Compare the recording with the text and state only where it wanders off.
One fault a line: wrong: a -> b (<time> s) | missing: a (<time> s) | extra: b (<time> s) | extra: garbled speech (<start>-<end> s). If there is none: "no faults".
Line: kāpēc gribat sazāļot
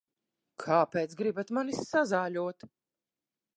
extra: mani (1.6 s)